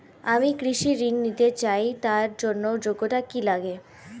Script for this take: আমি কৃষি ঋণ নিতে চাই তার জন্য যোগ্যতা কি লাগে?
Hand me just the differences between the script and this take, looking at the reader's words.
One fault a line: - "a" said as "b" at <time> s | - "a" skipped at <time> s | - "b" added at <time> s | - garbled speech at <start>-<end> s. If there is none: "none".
none